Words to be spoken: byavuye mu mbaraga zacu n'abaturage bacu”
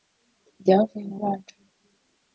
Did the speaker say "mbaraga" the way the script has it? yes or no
no